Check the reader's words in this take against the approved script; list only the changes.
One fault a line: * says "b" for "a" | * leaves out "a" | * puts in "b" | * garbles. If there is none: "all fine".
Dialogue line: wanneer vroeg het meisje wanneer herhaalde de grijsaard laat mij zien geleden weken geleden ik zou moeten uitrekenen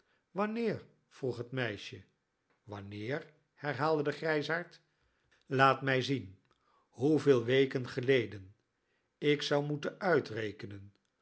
* says "hoeveel" for "geleden"